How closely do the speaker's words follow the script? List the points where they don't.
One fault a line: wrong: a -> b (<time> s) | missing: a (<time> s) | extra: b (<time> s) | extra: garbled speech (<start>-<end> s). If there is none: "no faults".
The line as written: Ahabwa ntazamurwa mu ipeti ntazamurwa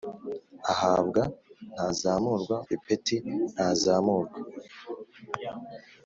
missing: mu (2.6 s)